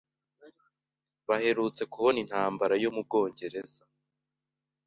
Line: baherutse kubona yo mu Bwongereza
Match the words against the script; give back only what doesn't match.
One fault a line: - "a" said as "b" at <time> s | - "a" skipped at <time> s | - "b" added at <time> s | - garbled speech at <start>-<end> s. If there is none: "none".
- "intambara" added at 2.2 s